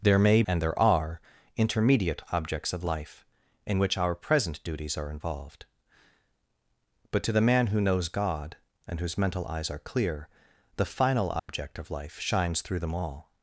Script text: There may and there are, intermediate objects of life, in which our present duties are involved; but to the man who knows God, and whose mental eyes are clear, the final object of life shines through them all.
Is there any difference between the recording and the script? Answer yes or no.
no